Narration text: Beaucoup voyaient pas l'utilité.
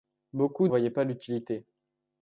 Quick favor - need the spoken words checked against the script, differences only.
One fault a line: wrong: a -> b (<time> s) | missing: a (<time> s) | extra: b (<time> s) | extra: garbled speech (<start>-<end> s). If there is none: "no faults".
no faults